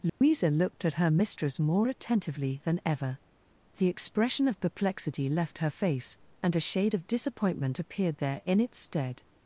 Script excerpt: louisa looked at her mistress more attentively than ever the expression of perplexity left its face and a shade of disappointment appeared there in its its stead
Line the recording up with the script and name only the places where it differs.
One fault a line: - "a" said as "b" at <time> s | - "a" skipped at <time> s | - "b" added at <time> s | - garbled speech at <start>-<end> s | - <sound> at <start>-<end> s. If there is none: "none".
- dropout at 0.1-0.2 s
- "its" said as "her" at 5.6 s
- "its" skipped at 8.8 s